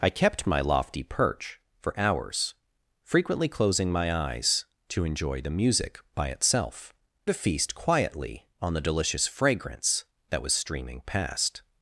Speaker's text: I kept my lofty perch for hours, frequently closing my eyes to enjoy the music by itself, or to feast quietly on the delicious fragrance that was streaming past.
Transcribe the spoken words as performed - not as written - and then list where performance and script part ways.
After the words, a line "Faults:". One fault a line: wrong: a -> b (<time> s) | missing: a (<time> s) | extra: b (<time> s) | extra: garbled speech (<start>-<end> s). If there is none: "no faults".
I kept my lofty perch for hours, frequently closing my eyes to enjoy the music by itself, to feast quietly on the delicious fragrance that was streaming past.
Faults:
missing: or (6.9 s)